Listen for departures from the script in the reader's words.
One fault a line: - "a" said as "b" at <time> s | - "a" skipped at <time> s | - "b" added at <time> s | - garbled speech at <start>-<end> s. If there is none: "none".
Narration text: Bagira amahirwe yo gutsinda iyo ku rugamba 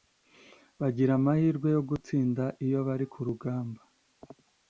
- "bari" added at 2.9 s